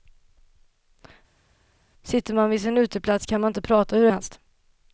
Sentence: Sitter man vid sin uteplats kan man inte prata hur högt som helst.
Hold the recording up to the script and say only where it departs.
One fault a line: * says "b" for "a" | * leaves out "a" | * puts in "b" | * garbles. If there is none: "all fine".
* leaves out "högt som"